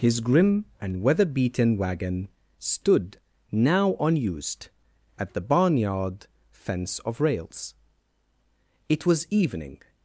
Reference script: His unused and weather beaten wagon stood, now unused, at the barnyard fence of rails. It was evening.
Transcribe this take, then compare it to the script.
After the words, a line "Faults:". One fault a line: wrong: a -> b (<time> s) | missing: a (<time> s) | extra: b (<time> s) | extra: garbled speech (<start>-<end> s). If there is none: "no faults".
His grim and weather beaten wagon stood, now unused, at the barnyard fence of rails. It was evening.
Faults:
wrong: unused -> grim (0.2 s)